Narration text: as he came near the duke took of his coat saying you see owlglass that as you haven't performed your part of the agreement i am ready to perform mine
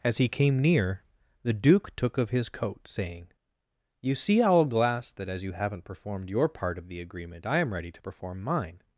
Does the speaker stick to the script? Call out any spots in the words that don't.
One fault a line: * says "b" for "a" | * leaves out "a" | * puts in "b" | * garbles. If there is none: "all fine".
all fine